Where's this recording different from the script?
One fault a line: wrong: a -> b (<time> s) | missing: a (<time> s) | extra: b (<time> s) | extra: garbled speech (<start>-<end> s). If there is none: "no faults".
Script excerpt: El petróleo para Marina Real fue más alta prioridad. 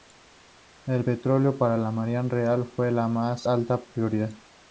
extra: la (1.8 s)
extra: la (2.9 s)